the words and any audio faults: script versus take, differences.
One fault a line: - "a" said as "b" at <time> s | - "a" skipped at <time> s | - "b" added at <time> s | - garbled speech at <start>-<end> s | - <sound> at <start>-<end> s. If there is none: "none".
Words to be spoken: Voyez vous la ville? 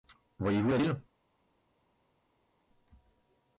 none